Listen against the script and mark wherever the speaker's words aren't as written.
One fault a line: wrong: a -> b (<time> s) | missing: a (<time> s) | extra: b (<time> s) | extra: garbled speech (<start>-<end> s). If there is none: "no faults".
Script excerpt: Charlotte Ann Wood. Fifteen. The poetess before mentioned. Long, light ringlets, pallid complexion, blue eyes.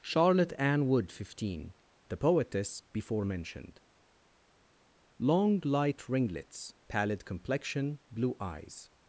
no faults